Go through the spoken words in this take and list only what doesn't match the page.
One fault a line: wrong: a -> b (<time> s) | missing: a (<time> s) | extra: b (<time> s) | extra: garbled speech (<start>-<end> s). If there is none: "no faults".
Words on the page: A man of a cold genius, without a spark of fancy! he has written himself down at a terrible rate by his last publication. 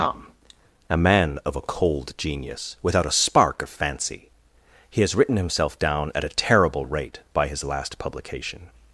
extra: tom (0.0 s)